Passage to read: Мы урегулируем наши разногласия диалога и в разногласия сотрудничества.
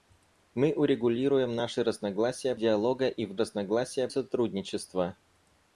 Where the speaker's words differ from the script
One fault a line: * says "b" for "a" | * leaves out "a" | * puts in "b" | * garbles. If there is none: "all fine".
all fine